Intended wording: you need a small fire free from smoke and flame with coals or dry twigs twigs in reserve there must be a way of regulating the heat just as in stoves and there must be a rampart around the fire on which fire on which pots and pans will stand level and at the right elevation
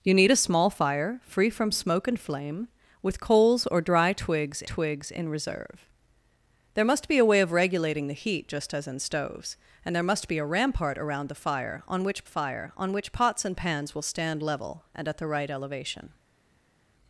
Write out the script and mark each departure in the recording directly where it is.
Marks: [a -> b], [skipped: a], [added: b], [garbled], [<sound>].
you need a small fire free from smoke and flame with coals or dry twigs twigs in reserve there must be a way of regulating the heat just as in stoves and there must be a rampart around the fire on which fire on which pots and pans will stand level and at the right elevation